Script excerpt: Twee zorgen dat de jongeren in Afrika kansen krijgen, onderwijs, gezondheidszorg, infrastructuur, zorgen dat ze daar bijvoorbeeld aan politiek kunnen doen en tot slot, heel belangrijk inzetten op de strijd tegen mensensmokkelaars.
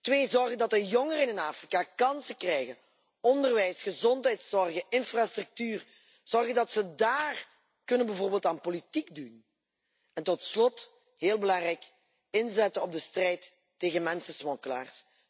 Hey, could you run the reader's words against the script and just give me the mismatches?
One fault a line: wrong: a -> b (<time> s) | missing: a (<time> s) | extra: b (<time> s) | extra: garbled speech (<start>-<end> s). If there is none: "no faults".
no faults